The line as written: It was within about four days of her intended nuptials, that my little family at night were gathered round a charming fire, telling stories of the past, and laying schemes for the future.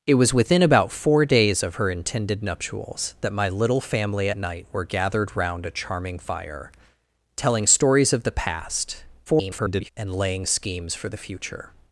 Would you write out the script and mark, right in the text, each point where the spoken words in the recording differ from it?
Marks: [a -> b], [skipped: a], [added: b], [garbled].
It was within about four days of her intended nuptials, that my little family [skipped: at] night were gathered round a charming fire, telling stories of the past, [garbled] and laying schemes for the future.